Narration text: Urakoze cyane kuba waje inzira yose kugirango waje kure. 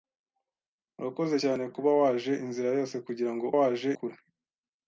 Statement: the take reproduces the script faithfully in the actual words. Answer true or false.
true